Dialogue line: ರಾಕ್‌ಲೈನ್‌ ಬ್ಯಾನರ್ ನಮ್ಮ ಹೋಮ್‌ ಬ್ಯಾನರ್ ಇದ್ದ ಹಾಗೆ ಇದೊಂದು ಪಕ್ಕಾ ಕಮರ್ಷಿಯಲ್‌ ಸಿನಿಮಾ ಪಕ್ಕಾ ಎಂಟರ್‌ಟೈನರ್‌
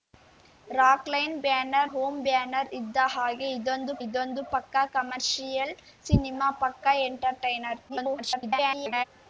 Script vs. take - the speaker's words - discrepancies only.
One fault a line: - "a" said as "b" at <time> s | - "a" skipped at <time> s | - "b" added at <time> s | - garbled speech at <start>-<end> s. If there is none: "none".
- "ನಮ್ಮ" skipped at 1.9 s
- "ಇದೊಂದು" added at 4.0 s
- garbled speech at 7.9-9.0 s